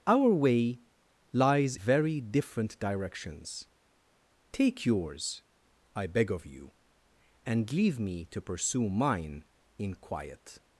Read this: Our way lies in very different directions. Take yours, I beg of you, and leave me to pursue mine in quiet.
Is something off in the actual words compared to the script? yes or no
yes